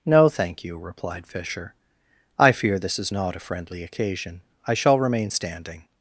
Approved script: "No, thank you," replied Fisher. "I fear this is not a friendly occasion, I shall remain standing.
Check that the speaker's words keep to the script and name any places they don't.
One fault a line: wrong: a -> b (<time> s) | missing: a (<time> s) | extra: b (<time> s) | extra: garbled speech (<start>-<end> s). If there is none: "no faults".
no faults